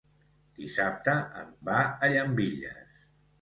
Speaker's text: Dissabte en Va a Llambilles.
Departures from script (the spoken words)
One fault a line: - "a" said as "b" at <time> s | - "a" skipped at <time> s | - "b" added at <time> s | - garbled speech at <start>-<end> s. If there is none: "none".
none